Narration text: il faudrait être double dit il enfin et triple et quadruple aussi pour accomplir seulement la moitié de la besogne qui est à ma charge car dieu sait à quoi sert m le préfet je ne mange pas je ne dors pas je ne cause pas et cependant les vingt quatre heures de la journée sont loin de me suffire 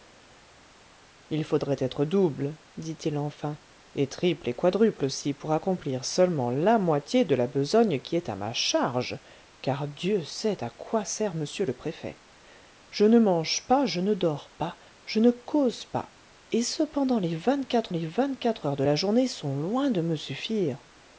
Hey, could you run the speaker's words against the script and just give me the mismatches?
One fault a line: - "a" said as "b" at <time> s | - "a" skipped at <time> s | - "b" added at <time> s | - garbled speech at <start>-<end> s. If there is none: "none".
- "les vingt quatre" added at 17.9 s